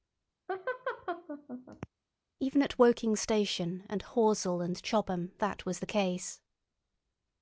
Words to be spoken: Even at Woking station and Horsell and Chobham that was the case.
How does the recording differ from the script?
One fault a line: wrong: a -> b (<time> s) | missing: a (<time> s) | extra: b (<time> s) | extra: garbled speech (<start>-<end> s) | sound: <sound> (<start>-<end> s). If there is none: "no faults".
sound: laugh (0.5-1.9 s)